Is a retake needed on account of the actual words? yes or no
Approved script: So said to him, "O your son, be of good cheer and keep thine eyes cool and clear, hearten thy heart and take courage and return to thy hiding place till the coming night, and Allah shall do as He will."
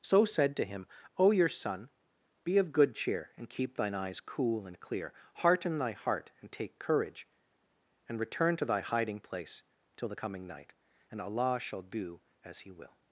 no